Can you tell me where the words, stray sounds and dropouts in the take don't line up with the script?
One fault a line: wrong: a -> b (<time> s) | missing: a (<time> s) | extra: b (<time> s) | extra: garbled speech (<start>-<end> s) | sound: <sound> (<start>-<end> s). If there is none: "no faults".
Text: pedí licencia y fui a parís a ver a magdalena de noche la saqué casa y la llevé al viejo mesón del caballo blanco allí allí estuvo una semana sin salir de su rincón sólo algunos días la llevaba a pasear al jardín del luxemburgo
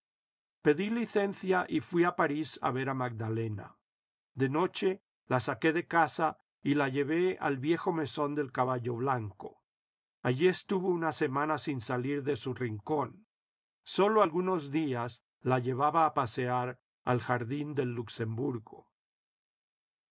extra: de (5.7 s)
missing: allí (10.5 s)